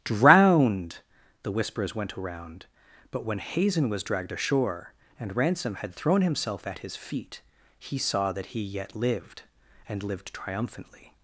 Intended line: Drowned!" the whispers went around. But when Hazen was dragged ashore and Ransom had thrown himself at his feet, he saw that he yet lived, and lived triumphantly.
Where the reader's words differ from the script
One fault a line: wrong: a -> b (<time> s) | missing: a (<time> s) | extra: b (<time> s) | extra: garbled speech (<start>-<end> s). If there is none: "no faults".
no faults